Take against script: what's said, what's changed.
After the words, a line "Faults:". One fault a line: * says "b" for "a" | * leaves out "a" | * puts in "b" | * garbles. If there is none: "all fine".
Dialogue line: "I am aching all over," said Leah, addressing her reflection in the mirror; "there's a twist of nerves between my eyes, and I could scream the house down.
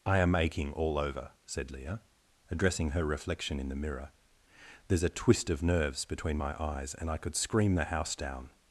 "I am aching all over," said Leah, addressing her reflection in the mirror; "there's a twist of nerves between my eyes, and I could scream the house down.
Faults:
all fine